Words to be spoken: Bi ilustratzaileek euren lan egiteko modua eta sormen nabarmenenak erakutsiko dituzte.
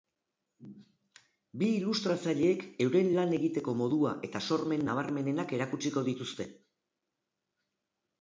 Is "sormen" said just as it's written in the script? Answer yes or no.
yes